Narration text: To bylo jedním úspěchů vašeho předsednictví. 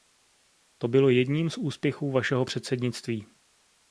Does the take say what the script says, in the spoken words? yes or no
no